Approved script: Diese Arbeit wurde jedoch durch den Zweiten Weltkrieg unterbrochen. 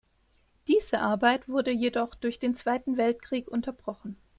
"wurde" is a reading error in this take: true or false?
false